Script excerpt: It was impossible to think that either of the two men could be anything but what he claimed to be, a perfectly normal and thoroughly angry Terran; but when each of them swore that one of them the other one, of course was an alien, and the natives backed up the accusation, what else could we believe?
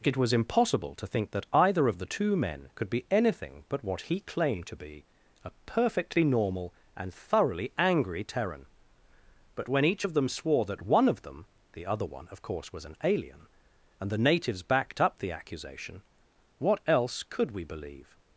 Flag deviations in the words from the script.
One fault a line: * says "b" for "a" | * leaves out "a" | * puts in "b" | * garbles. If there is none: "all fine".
all fine